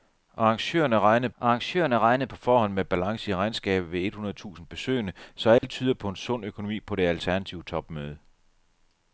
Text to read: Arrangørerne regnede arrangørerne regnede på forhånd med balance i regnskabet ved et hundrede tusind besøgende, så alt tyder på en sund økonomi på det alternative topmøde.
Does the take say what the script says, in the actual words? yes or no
yes